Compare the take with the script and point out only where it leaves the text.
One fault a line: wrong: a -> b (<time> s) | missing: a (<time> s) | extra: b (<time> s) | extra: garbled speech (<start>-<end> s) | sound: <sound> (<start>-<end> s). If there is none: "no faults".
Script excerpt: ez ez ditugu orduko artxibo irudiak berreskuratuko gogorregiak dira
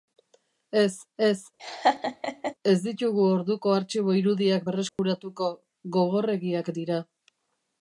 sound: laugh (1.6-2.5 s)
extra: ez (2.7 s)
sound: dropout (4.9-5.0 s)